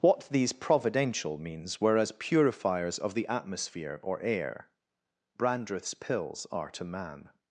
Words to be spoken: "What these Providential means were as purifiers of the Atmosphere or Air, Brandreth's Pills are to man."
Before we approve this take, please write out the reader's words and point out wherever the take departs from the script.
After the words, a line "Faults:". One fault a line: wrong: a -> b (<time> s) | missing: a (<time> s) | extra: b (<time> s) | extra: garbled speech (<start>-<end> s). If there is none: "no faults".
"What these Providential means were as purifiers of the Atmosphere or Air, Brandreth's Pills are to man."
Faults:
no faults